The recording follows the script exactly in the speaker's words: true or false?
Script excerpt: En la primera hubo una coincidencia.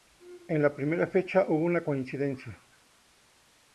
false